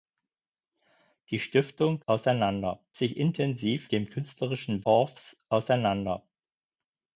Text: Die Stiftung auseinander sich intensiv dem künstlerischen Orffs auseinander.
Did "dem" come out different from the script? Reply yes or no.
no